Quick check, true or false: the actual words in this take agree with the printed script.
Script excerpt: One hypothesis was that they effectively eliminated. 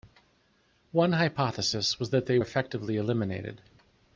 true